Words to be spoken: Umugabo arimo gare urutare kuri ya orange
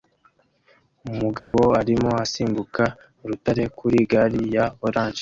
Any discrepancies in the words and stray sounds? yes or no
yes